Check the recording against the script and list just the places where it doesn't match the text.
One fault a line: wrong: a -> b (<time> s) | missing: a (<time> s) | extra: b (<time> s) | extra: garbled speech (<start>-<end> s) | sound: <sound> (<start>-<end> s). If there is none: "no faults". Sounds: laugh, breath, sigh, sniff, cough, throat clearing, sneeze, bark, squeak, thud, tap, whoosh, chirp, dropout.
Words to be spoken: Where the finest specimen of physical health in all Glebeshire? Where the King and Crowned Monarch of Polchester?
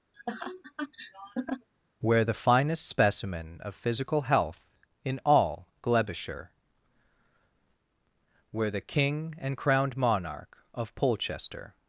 sound: laugh (0.1-1.7 s)